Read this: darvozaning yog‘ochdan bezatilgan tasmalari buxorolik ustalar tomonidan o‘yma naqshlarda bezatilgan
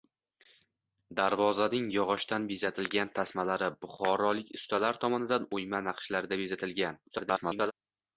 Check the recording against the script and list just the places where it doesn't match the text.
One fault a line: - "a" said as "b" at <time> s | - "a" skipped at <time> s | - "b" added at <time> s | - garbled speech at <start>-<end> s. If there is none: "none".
- garbled speech at 7.1-7.7 s